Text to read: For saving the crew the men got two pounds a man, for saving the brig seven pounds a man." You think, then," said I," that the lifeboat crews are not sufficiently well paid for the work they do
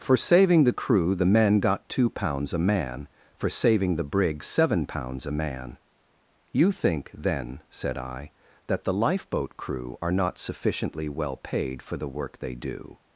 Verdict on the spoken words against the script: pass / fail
fail